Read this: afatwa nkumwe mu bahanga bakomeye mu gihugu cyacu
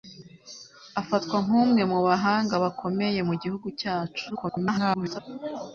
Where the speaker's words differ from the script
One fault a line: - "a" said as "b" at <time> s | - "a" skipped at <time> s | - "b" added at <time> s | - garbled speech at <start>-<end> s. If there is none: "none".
- garbled speech at 4.3-5.2 s